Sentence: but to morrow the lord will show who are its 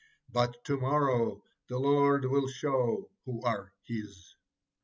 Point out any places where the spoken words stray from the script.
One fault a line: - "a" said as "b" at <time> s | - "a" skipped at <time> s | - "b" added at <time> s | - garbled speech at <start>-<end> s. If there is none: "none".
- "its" said as "his" at 3.8 s